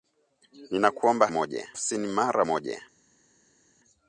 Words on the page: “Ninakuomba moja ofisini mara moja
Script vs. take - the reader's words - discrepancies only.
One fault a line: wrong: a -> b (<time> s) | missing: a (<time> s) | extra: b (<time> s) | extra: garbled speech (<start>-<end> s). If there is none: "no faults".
no faults